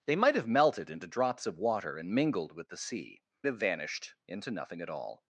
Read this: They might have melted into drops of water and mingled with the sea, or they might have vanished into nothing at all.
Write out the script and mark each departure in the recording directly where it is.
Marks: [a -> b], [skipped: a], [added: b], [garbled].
They might have melted into drops of water and mingled with the sea, [skipped: or they might] have vanished into nothing at all.